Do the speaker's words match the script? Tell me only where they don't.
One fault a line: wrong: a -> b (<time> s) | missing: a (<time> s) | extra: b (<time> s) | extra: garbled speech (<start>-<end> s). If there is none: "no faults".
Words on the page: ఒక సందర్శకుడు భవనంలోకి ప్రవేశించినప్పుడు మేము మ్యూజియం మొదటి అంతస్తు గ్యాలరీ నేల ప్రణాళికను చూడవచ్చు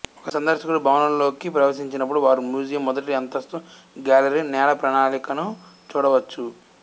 wrong: మేము -> వారు (2.2 s)